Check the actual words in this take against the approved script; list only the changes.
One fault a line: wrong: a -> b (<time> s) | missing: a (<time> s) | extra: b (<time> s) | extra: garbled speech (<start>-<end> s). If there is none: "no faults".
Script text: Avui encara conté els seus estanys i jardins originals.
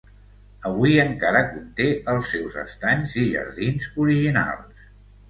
no faults